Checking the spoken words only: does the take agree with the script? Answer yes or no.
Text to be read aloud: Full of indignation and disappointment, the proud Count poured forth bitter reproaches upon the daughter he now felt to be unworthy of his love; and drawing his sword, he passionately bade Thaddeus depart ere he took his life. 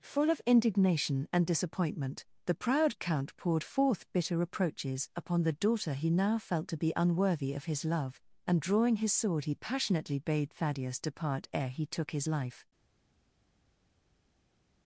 yes